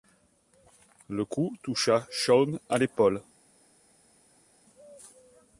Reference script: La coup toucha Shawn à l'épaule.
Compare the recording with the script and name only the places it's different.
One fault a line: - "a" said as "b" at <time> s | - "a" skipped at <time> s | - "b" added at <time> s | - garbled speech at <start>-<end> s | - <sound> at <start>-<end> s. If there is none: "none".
- "La" said as "Le" at 1.1 s